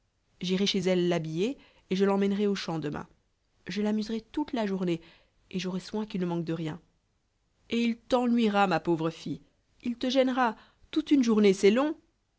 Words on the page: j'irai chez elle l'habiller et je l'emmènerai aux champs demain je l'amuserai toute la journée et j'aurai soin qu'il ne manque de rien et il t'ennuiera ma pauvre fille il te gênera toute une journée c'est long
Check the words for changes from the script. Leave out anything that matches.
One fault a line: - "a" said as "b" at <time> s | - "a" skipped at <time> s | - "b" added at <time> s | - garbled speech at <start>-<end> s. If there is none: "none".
none